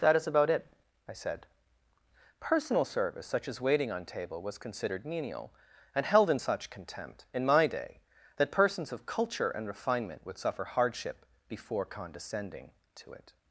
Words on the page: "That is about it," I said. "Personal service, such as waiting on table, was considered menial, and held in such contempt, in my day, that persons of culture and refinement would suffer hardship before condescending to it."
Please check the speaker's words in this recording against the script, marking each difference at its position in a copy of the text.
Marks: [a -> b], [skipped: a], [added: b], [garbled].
"That is about it," I said. "Personal service, such as waiting on table, was considered menial, and held in such contempt, in my day, that persons of culture and refinement would suffer hardship before condescending to it."